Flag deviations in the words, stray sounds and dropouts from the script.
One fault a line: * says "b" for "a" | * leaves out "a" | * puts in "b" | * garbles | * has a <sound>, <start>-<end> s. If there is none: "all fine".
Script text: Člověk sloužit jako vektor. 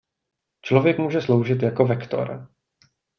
* puts in "může"